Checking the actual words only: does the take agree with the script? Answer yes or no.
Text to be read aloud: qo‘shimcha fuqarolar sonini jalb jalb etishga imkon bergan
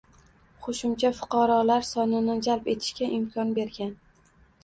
no